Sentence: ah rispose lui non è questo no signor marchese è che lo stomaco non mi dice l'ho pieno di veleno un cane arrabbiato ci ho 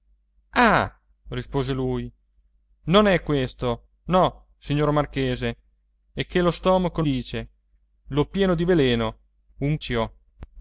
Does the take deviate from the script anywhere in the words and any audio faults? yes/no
yes